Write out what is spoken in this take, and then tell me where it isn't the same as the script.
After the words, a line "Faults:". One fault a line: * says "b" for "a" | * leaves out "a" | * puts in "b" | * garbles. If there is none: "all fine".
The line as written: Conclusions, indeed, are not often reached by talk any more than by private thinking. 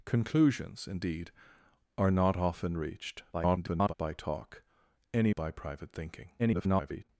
Conclusions, indeed, are not often reached [garbled] by talk any by private thinking. [garbled]
Faults:
* garbles
* leaves out "more than"
* garbles